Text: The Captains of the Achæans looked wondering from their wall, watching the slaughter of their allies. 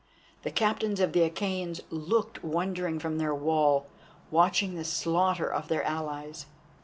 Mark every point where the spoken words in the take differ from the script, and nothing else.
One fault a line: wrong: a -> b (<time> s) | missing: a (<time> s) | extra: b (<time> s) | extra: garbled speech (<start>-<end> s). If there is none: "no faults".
no faults